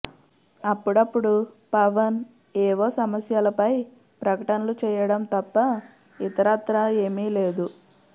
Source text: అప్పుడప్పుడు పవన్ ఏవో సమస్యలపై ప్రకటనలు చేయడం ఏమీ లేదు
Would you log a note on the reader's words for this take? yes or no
yes